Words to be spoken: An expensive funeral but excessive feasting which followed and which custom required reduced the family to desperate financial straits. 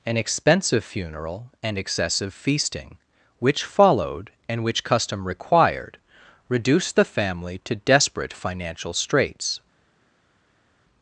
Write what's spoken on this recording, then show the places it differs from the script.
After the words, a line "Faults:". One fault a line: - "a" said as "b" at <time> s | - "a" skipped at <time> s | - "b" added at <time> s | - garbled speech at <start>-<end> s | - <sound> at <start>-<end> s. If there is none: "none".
An expensive funeral and excessive feasting which followed and which custom required reduced the family to desperate financial straits.
Faults:
- "but" said as "and" at 1.6 s